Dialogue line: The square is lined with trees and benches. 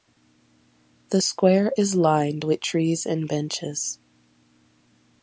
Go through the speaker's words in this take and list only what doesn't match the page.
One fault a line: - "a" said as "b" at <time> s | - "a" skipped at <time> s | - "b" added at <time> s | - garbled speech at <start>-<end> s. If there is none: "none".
none